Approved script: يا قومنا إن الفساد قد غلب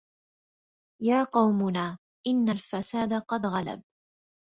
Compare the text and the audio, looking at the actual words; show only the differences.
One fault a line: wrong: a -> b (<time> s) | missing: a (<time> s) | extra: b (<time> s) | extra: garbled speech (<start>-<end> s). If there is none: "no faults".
no faults